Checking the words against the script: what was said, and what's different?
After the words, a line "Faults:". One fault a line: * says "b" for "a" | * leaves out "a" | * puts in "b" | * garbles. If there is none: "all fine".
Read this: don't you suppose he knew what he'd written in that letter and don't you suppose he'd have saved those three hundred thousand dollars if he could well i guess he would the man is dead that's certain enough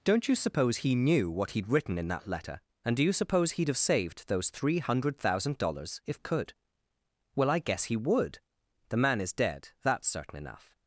don't you suppose he knew what he'd written in that letter and do you suppose he'd have saved those three hundred thousand dollars if could well i guess he would the man is dead that's certain enough
Faults:
* says "do" for "don't"
* leaves out "he"